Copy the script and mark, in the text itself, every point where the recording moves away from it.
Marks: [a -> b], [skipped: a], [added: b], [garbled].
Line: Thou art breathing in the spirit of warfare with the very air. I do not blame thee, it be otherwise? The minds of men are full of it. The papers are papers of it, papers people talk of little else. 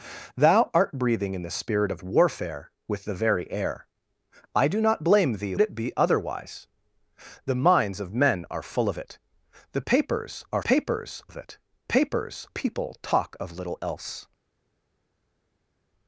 Thou art breathing in the spirit of warfare with the very air. I do not blame thee, it be otherwise? The minds of men are full of it. The papers are papers of it, papers people talk of little else.